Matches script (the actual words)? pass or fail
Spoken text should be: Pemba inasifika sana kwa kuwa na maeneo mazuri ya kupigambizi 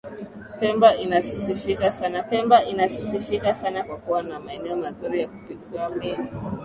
fail